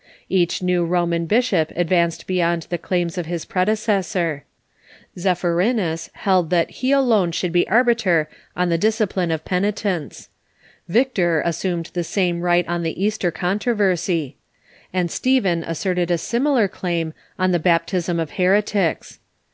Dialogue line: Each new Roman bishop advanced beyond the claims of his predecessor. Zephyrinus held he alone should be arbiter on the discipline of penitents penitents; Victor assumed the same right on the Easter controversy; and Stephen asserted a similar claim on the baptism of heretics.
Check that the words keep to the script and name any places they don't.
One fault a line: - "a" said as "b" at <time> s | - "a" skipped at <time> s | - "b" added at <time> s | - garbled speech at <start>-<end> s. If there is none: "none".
- "that" added at 6.5 s
- "penitents" skipped at 10.3 s